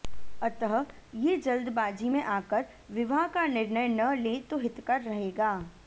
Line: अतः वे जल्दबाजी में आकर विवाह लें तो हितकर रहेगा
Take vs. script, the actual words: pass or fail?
fail